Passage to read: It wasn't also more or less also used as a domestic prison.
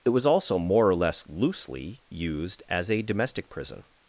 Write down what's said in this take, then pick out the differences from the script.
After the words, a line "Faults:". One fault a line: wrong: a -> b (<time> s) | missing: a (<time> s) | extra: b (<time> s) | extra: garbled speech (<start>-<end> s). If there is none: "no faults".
It was also more or less loosely used as a domestic prison.
Faults:
wrong: wasn't -> was (0.1 s)
wrong: also -> loosely (1.3 s)